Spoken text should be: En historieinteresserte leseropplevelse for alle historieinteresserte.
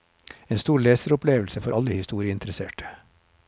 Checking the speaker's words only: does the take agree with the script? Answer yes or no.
no